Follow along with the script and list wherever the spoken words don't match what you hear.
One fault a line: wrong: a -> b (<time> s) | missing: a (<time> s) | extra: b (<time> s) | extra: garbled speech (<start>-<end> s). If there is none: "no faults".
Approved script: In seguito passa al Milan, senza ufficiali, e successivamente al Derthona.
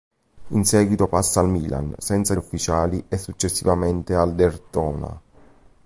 no faults